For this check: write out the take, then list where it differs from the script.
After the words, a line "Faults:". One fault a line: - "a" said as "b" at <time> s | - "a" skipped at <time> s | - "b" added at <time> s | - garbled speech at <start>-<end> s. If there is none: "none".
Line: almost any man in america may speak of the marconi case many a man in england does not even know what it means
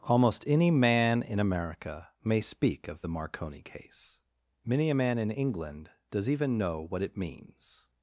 almost any man in america may speak of the marconi case many a man in england does even know what it means
Faults:
- "not" skipped at 6.3 s